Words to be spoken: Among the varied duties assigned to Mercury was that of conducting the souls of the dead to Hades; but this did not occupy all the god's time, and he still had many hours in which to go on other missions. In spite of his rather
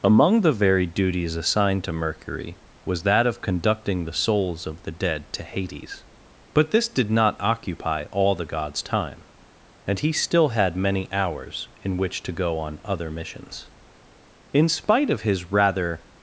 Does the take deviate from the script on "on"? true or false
false